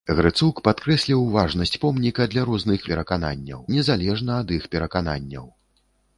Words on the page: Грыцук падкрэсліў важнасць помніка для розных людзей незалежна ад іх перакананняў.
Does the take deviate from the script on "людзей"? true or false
true